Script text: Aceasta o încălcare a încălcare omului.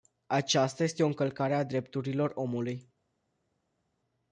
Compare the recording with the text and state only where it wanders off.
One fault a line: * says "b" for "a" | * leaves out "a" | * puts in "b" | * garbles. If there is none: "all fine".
* puts in "este"
* says "drepturilor" for "încălcare"